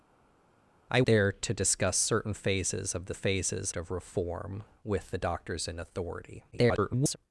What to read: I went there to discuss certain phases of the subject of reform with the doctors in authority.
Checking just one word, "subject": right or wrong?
wrong